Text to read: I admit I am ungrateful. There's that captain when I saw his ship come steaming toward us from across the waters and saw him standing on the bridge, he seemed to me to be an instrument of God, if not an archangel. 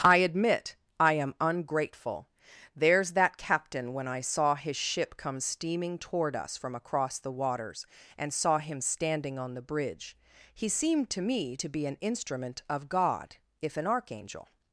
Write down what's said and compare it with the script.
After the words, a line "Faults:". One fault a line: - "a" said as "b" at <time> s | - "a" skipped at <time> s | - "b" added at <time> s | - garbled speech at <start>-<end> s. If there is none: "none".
I admit I am ungrateful. There's that captain when I saw his ship come steaming toward us from across the waters and saw him standing on the bridge, he seemed to me to be an instrument of God, if an archangel.
Faults:
- "not" skipped at 13.8 s